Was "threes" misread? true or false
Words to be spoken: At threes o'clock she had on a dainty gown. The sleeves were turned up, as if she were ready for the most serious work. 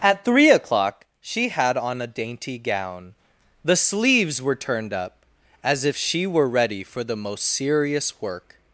true